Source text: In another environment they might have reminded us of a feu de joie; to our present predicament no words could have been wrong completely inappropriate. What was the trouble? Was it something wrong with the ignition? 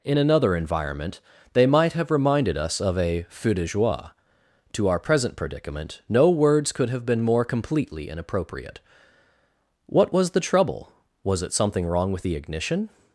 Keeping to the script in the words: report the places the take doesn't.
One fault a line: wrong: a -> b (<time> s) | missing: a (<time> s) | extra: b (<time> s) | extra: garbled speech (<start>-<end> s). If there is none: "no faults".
wrong: wrong -> more (7.2 s)